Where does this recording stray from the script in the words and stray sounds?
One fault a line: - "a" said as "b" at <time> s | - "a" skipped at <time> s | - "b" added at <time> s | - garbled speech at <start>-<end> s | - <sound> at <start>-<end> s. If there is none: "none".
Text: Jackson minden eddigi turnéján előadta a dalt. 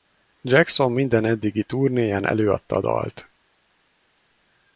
none